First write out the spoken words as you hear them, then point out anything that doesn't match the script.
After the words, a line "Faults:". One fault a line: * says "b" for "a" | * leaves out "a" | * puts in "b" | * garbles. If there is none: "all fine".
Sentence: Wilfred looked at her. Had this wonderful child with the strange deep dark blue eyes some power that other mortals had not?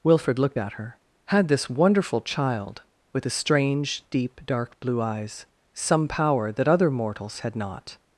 Wilfred looked at her. Had this wonderful child with the strange deep dark blue eyes some power that other mortals had not?
Faults:
all fine